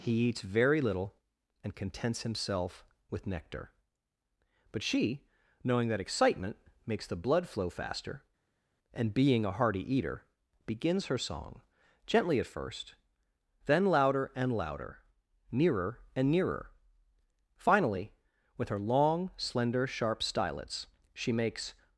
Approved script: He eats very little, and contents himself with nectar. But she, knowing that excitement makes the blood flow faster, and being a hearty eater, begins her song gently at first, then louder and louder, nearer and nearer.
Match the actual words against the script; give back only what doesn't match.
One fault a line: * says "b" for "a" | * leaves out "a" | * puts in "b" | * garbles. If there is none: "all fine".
* puts in "Finally with her long slender sharp stylets she makes"